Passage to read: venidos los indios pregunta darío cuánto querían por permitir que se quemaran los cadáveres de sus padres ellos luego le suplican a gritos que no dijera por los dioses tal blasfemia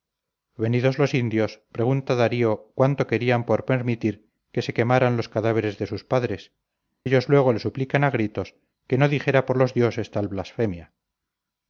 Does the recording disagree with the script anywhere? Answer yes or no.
no